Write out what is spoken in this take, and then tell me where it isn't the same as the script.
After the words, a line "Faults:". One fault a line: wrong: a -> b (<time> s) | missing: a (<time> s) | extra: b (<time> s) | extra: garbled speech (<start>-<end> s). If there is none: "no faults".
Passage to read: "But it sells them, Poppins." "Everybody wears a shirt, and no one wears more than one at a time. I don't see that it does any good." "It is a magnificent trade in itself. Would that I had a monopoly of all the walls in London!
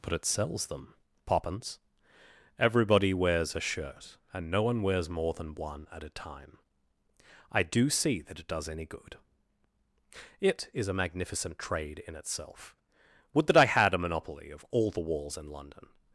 "But it sells them, Poppins." "Everybody wears a shirt, and no one wears more than one at a time. I do see that it does any good." "It is a magnificent trade in itself. Would that I had a monopoly of all the walls in London!
Faults:
wrong: don't -> do (7.6 s)